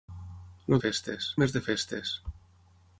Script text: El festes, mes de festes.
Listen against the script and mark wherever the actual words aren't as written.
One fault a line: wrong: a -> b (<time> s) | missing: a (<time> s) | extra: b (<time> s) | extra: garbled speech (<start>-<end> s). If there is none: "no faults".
no faults